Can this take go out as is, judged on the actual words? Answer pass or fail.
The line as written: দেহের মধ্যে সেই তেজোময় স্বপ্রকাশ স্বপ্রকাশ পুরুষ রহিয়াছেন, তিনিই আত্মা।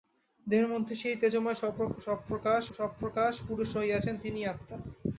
pass